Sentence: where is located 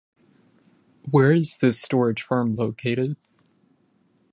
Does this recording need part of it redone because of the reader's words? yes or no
yes